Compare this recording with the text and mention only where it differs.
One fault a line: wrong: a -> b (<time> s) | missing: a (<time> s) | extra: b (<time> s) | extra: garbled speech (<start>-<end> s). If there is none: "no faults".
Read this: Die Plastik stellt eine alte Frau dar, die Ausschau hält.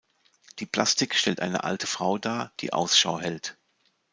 no faults